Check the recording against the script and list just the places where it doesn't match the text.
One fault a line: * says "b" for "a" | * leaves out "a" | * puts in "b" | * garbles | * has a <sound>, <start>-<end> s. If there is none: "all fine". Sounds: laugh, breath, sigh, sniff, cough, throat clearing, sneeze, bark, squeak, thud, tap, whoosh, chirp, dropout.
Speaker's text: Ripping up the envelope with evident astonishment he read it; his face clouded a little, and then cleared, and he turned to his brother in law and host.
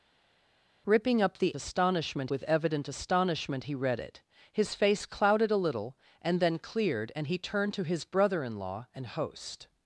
* says "astonishment" for "envelope"